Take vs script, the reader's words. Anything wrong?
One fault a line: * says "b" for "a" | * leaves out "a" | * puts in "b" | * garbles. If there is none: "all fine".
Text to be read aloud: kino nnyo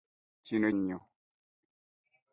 all fine